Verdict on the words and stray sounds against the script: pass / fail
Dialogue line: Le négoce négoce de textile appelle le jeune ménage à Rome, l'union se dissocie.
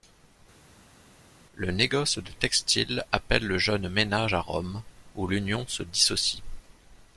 fail